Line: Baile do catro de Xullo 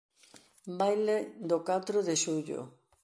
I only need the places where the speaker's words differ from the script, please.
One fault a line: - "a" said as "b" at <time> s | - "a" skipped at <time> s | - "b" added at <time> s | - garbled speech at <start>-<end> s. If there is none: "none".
none